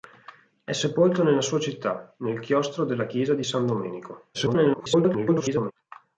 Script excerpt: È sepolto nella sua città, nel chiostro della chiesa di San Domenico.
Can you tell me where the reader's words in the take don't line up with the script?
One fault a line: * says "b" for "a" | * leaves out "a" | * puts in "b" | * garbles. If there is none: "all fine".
* garbles